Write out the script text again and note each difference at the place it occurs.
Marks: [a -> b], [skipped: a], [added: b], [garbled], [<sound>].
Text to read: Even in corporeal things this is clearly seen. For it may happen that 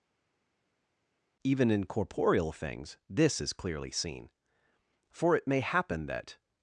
Even in corporeal things this is clearly seen. For it may happen that